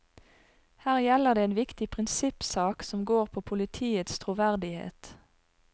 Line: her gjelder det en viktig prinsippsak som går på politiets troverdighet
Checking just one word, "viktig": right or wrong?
right